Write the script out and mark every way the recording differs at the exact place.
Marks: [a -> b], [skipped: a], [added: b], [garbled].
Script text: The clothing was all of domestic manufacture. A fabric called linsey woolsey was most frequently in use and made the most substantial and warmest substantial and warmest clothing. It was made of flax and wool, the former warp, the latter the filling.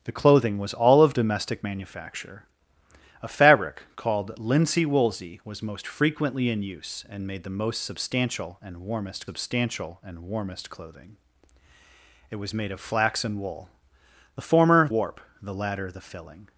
The clothing was all of domestic manufacture. A fabric called linsey woolsey was most frequently in use and made the most substantial and warmest substantial and warmest clothing. It was made of flax and wool, the former warp, the latter the filling.